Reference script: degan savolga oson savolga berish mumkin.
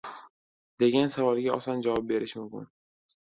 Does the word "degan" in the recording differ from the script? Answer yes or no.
no